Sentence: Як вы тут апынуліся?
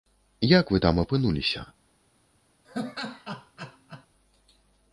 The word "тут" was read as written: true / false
false